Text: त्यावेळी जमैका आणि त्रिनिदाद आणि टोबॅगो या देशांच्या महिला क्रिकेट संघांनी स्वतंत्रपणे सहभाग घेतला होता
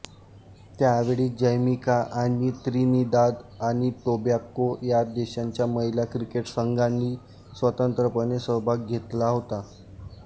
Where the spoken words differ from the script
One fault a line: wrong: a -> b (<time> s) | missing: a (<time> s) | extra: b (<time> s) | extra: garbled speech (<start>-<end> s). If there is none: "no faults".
no faults